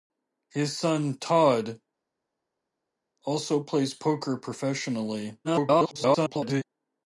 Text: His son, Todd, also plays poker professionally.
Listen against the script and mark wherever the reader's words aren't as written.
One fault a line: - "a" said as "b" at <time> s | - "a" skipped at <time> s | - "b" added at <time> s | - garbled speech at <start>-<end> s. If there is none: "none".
- garbled speech at 5.4-6.6 s